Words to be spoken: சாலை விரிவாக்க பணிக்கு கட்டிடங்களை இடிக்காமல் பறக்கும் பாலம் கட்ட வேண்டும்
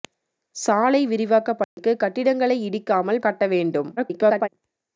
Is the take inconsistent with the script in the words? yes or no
yes